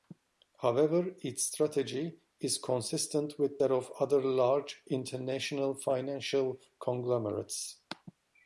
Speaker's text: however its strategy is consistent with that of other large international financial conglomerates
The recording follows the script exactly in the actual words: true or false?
true